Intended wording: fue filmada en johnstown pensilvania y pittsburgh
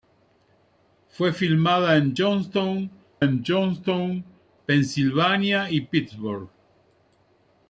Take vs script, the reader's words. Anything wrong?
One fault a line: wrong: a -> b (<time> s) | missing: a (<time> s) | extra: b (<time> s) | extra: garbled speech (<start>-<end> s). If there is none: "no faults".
extra: en johnstown (3.2 s)